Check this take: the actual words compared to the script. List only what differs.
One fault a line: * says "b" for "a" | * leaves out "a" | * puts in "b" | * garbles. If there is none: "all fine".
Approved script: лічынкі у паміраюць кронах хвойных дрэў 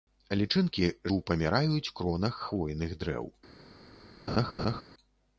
all fine